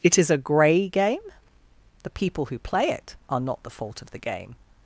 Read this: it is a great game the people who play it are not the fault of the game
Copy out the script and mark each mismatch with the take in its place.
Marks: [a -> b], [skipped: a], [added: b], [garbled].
it is a [great -> grey] game the people who play it are not the fault of the game